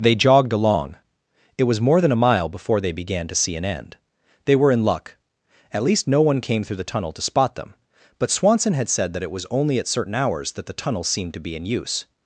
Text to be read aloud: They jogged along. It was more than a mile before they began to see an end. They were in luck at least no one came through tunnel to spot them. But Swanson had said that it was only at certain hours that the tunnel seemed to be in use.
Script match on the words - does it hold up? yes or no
no